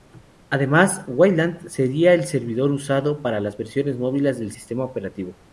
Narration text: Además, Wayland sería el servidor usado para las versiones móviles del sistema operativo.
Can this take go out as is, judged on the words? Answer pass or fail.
pass